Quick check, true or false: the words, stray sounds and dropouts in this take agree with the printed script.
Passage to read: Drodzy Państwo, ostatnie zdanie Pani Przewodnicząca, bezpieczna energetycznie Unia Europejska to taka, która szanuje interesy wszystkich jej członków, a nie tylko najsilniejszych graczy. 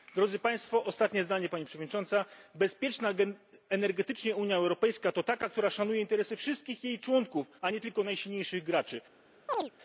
false